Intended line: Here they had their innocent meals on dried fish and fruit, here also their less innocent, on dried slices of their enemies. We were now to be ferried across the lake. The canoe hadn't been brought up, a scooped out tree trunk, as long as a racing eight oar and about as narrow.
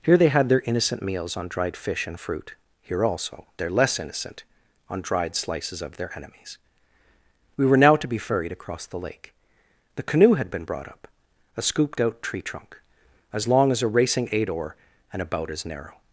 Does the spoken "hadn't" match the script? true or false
false